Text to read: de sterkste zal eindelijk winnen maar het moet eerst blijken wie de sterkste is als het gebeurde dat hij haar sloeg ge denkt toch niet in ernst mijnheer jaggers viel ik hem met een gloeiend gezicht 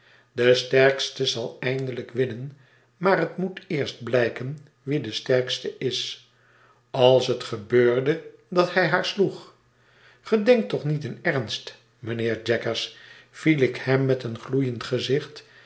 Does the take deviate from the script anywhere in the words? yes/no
no